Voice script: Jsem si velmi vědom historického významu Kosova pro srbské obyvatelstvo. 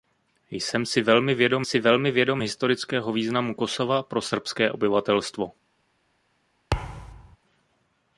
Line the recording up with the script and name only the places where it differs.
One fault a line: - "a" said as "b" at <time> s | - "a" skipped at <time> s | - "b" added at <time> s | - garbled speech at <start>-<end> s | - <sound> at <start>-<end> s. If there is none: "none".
- "si velmi vědom" added at 1.6 s
- thud at 6.7-7.4 s